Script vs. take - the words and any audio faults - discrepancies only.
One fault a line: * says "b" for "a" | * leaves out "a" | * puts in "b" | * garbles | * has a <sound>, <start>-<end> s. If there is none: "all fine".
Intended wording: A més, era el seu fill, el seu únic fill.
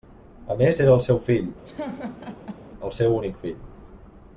* has a laugh, 1.6-2.7 s